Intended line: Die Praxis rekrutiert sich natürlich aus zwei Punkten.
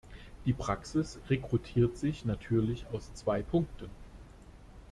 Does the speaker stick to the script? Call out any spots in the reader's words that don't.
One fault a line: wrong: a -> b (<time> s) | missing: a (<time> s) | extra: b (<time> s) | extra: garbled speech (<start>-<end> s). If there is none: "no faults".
no faults